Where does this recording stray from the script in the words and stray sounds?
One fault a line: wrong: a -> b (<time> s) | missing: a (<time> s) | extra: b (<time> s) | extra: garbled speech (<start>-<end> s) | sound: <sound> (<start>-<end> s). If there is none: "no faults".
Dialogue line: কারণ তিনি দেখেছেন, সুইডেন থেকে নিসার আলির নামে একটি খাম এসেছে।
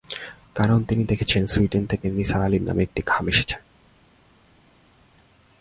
no faults